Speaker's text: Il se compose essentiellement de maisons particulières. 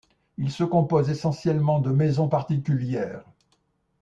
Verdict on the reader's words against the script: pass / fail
pass